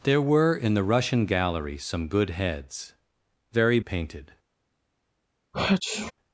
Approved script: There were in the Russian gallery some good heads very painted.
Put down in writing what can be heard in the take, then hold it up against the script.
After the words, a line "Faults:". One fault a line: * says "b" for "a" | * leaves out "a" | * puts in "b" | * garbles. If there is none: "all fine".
There were in the Russian gallery some good heads very painted.
Faults:
all fine